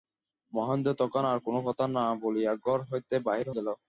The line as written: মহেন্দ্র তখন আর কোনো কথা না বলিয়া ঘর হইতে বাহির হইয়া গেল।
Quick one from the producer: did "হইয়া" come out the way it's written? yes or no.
no